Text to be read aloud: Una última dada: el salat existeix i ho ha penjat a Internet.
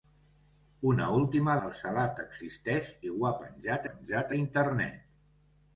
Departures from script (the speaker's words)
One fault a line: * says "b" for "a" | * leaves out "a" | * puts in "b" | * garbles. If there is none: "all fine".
* leaves out "dada"
* puts in "penjat"